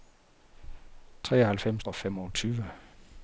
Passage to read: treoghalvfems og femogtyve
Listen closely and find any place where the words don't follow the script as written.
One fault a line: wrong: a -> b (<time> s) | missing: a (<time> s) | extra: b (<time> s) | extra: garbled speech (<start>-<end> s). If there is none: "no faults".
no faults